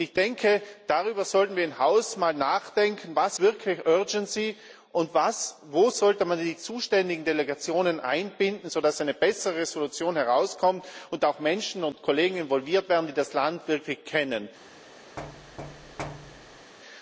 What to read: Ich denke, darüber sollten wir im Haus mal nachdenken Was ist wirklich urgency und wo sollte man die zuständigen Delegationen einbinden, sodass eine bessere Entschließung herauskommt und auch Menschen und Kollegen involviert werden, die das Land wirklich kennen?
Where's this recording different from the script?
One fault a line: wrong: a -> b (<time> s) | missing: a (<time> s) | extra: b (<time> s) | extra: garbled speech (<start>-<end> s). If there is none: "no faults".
missing: ist (3.4 s)